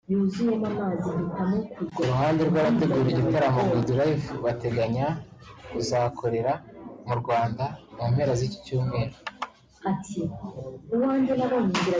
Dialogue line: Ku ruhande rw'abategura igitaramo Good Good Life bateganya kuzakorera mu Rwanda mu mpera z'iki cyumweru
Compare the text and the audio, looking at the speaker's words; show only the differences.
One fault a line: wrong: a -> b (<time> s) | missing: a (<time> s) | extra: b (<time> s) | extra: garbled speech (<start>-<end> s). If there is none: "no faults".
missing: Good (3.9 s)